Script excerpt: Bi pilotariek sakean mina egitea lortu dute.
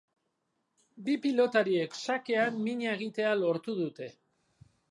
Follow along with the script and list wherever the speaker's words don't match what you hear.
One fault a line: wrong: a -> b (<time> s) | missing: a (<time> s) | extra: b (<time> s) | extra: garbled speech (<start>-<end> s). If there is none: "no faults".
no faults